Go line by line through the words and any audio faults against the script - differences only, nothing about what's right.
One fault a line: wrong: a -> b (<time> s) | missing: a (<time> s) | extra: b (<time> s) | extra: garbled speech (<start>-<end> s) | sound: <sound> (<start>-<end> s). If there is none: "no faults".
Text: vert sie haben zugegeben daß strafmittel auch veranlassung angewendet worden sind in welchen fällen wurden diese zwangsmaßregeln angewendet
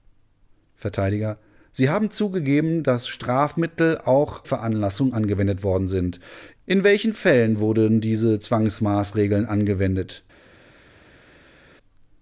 no faults